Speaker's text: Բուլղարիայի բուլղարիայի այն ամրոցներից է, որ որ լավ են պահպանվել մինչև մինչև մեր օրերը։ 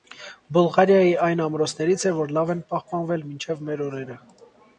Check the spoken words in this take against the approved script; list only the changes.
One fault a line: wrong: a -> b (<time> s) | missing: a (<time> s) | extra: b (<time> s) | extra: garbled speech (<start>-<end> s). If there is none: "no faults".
missing: բուլղարիայի (1.1 s)
missing: որ (2.3 s)
missing: մինչև (3.6 s)